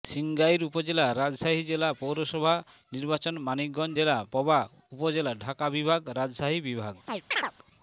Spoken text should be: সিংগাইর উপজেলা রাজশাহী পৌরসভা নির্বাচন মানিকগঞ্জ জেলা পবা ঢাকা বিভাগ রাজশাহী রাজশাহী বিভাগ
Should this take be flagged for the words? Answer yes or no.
yes